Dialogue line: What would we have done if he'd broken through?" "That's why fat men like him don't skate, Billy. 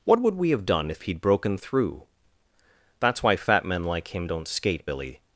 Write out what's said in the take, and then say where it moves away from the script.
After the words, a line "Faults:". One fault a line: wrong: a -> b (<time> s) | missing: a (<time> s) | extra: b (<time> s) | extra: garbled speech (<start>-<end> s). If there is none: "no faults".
What would we have done if he'd broken through?" "That's why fat men like him don't skate, Billy.
Faults:
no faults